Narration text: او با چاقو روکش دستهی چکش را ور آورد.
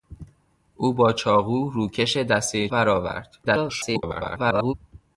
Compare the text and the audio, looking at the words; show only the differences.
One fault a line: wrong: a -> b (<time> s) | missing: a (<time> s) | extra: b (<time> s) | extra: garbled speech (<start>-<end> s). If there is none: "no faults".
missing: چکش را (2.7 s)
extra: garbled speech (3.4-4.7 s)